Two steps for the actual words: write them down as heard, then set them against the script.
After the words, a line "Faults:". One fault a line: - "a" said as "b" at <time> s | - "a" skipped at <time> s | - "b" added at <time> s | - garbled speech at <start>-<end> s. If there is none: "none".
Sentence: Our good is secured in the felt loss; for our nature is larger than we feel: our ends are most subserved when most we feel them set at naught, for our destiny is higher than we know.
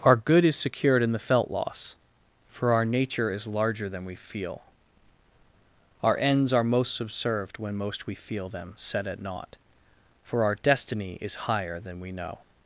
Our good is secured in the felt loss; for our nature is larger than we feel: our ends are most subserved when most we feel them set at naught, for our destiny is higher than we know.
Faults:
none